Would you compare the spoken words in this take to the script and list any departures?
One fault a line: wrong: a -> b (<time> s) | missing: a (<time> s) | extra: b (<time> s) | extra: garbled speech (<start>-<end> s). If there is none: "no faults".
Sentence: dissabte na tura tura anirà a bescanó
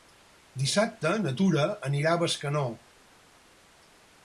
missing: tura (1.7 s)